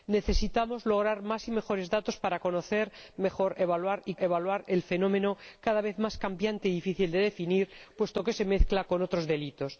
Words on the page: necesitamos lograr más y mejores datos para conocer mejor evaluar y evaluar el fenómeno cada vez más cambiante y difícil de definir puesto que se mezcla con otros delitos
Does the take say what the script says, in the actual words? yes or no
yes